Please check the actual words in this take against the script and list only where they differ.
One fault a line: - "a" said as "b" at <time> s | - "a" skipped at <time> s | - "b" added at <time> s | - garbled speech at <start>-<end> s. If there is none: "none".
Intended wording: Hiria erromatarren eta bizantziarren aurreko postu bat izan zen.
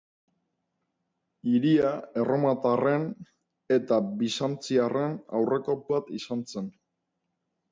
- "postu" skipped at 5.8 s